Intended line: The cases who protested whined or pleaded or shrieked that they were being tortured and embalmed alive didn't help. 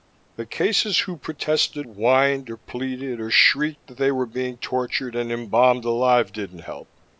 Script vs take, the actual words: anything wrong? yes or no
no